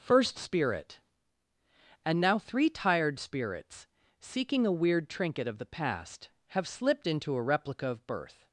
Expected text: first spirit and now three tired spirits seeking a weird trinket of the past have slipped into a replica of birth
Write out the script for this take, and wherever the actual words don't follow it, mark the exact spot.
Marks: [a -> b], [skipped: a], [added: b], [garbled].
first spirit and now three tired spirits seeking a weird trinket of the past have slipped into a replica of birth